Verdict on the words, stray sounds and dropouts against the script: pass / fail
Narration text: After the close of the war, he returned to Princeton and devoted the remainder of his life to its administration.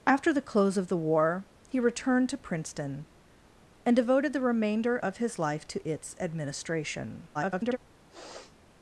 fail